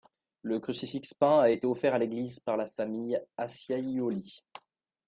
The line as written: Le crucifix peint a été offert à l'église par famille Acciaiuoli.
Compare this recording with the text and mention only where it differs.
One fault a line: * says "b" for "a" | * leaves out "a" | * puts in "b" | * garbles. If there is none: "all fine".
* puts in "la"